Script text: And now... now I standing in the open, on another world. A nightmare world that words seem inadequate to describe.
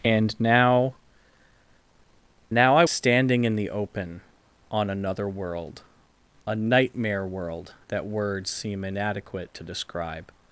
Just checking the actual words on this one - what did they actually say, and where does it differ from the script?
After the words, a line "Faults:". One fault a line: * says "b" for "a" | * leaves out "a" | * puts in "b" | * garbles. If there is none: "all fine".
And now... now I standing in the open, on another world. A nightmare world that words seem inadequate to describe.
Faults:
all fine